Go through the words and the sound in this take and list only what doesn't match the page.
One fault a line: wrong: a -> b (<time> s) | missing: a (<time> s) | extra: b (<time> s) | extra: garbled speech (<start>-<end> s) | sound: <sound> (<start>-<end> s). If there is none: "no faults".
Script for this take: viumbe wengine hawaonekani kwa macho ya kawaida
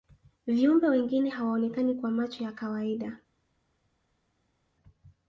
no faults